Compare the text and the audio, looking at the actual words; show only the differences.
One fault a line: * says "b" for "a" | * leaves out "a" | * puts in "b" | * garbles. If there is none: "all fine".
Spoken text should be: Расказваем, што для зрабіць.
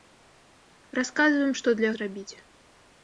all fine